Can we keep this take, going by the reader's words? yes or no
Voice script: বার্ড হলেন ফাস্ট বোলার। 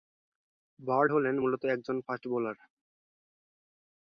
no